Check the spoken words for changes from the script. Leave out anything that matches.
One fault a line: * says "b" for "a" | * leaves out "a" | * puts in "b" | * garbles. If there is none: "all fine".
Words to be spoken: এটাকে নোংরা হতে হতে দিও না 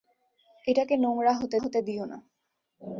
all fine